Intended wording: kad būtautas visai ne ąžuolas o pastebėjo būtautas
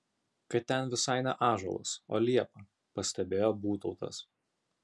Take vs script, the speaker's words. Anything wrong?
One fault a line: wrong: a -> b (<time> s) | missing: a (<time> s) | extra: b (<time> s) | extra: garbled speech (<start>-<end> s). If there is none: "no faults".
wrong: būtautas -> ten (0.7 s)
extra: liepa (2.2 s)